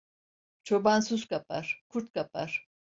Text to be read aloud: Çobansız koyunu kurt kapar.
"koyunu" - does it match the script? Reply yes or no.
no